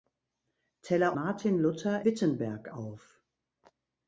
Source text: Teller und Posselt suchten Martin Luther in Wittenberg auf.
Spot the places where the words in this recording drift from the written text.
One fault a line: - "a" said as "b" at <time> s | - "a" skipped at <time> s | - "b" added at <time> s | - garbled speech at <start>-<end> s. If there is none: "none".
- "und Posselt suchten" skipped at 1.1 s
- "in" skipped at 2.1 s